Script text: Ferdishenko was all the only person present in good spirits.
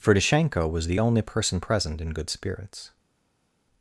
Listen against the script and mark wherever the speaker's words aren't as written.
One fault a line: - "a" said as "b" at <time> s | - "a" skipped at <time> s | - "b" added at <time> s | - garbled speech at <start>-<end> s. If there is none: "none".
- "all" skipped at 0.9 s